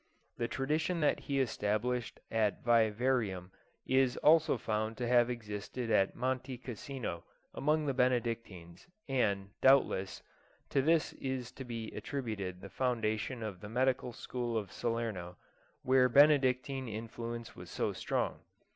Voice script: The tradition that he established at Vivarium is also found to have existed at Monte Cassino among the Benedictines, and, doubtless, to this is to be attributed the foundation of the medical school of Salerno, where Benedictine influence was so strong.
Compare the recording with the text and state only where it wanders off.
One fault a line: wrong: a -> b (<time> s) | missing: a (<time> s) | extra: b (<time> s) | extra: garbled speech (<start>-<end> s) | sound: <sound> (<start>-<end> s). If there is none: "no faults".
no faults